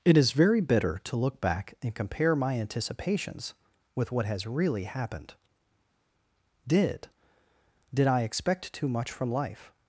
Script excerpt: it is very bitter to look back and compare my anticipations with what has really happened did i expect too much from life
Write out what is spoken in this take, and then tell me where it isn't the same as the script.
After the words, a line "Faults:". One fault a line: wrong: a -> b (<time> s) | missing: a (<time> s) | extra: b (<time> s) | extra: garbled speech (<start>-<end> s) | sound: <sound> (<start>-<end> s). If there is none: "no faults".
it is very bitter to look back and compare my anticipations with what has really happened did did i expect too much from life
Faults:
extra: did (7.9 s)